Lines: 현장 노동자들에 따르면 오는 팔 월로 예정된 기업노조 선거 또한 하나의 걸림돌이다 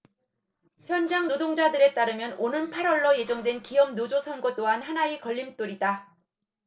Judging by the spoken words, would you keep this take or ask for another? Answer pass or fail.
pass